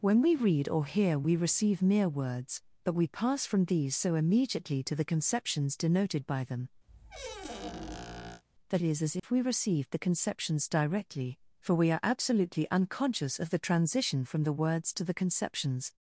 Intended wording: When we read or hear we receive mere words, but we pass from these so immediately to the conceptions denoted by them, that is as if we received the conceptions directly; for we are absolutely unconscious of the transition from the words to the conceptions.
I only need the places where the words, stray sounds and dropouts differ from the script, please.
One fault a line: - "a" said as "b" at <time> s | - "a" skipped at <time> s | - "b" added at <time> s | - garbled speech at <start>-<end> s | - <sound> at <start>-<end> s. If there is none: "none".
- squeak at 6.9-8.4 s
- dropout at 9.2-9.2 s